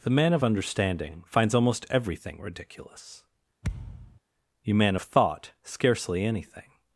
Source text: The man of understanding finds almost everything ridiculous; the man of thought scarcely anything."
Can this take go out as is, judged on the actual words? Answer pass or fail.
fail